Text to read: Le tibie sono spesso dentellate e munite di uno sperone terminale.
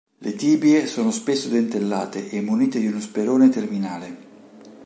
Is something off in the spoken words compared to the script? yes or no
no